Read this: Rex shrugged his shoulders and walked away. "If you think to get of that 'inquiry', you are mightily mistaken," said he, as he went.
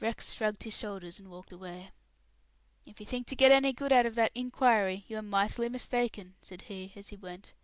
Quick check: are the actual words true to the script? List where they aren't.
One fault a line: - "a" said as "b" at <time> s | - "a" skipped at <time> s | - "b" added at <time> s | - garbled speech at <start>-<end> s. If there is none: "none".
- "any good out" added at 3.5 s